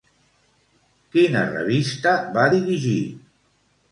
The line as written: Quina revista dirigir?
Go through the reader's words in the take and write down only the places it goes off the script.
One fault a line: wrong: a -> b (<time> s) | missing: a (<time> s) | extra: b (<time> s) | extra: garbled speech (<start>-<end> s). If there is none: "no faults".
extra: va (2.4 s)